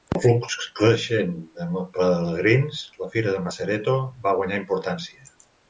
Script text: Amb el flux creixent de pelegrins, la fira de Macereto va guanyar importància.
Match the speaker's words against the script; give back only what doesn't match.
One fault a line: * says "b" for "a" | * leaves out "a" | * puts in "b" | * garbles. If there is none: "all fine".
all fine